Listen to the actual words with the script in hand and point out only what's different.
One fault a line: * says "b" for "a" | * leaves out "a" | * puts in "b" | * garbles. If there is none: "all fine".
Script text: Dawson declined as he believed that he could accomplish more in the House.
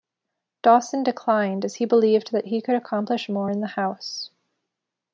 all fine